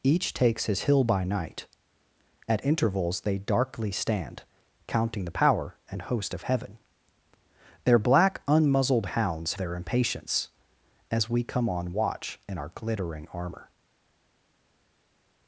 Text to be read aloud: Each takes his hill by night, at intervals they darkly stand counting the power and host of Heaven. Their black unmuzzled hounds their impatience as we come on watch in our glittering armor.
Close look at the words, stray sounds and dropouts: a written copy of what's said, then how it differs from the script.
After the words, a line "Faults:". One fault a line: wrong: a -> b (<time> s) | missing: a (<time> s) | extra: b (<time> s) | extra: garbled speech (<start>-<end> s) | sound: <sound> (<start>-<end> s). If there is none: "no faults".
Each takes his hill by night, at intervals they darkly stand counting the power and host of Heaven. Their black unmuzzled hounds their impatience as we come on watch in our glittering armor.
Faults:
no faults